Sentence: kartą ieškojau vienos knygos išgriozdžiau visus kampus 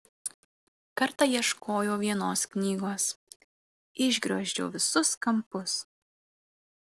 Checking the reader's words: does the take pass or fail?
pass